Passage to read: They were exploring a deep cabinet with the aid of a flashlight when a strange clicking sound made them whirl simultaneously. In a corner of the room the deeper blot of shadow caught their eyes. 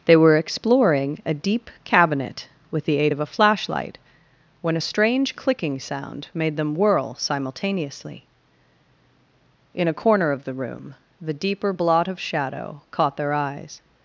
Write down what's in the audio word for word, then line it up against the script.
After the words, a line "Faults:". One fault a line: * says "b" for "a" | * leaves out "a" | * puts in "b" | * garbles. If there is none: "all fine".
They were exploring a deep cabinet with the aid of a flashlight when a strange clicking sound made them whirl simultaneously. In a corner of the room the deeper blot of shadow caught their eyes.
Faults:
all fine